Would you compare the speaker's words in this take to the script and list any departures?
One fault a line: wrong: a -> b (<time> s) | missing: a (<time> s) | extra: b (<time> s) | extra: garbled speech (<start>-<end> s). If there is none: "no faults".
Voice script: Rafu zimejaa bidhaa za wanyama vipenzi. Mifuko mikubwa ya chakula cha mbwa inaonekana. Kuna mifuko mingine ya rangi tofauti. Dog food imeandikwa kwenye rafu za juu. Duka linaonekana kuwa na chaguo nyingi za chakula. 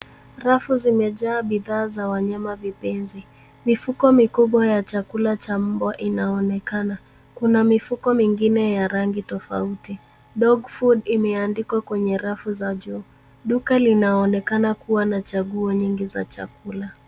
no faults